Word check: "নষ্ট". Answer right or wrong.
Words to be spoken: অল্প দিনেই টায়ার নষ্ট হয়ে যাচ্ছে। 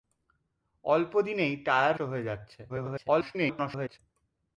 wrong